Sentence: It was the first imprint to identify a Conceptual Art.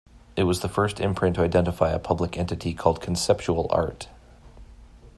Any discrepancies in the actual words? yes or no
yes